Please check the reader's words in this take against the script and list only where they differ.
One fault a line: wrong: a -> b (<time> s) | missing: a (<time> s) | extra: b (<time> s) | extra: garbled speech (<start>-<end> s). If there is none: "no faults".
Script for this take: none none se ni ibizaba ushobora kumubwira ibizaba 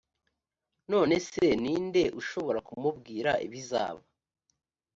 missing: none (1.1 s)
wrong: ibizaba -> nde (1.8 s)